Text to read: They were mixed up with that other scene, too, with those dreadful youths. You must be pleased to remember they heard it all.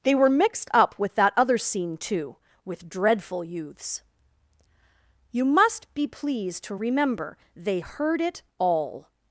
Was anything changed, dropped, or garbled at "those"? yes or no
yes